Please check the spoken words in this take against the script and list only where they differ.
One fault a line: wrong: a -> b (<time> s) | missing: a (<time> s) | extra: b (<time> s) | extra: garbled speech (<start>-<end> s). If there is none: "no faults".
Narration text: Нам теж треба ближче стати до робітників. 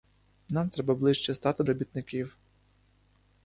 missing: теж (0.7 s)
missing: до (1.6 s)